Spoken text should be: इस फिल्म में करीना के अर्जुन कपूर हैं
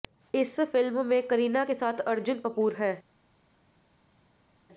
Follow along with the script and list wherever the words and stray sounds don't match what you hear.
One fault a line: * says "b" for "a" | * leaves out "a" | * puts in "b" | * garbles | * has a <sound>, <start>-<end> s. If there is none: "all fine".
* puts in "साथ"